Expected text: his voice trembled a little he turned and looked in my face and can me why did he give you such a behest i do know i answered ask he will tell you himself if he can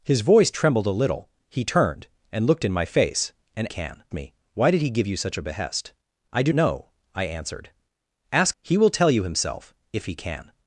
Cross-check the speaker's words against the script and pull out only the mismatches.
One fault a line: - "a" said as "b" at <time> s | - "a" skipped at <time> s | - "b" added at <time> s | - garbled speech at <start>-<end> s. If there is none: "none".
none